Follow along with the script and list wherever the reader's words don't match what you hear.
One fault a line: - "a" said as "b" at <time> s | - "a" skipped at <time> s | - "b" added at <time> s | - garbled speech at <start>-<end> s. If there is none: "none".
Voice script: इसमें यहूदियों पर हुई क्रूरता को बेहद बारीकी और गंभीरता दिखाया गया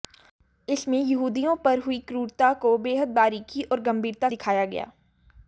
none